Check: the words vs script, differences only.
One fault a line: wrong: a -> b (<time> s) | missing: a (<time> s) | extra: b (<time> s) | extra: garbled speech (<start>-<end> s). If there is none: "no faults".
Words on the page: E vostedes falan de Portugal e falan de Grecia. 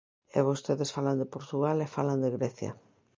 no faults